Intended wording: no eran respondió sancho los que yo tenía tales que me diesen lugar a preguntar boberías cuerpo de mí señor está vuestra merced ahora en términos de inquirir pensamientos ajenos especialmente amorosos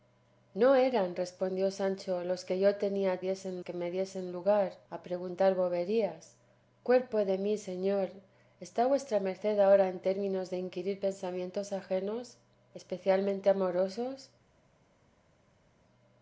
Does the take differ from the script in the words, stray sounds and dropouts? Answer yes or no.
yes